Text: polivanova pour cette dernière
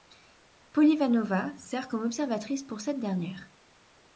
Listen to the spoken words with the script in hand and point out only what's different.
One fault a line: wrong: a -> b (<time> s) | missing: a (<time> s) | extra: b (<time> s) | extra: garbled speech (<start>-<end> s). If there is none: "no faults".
extra: sert comme observatrice (1.6 s)